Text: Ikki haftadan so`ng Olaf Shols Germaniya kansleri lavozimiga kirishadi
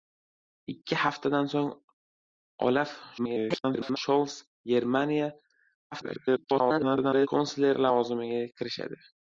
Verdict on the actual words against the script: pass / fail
fail